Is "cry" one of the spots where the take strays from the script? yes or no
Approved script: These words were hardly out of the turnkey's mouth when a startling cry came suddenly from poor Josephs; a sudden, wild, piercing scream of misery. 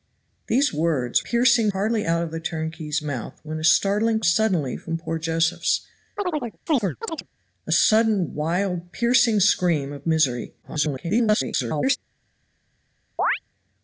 yes